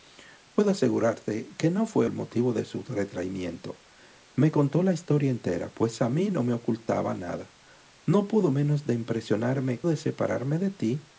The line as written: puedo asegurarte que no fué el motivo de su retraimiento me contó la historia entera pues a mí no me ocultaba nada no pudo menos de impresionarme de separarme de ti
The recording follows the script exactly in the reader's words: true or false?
true